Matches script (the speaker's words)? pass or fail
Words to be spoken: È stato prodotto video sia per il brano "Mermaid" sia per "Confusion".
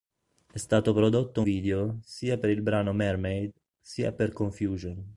pass